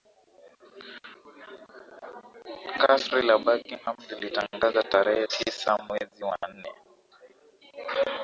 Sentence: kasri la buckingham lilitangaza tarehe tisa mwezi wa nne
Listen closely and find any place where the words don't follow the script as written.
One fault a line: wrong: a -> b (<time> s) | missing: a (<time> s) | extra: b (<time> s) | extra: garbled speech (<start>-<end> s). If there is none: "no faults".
no faults